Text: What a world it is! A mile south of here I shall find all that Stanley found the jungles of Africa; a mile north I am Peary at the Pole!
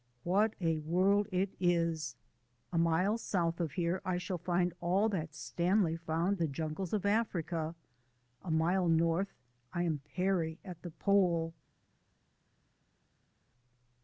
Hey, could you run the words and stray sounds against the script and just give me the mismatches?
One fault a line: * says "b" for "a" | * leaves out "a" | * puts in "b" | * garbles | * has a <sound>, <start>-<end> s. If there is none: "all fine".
all fine